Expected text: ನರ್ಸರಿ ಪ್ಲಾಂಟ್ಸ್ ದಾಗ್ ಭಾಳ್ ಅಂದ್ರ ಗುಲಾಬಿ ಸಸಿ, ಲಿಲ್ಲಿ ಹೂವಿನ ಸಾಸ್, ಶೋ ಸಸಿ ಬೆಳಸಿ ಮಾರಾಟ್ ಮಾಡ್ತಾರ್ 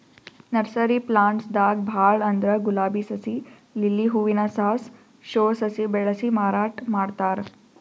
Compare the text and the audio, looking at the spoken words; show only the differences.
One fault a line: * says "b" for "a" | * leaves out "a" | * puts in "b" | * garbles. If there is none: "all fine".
all fine